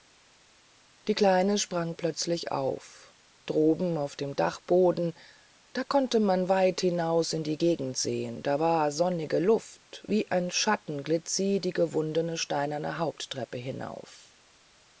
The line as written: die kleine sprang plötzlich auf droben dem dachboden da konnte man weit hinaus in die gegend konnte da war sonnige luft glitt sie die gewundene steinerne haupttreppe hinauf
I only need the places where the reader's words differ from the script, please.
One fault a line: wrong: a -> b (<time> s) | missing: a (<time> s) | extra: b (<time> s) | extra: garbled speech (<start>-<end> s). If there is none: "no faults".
extra: auf (4.0 s)
wrong: konnte -> sehen (8.0 s)
extra: wie ein schatten (10.1 s)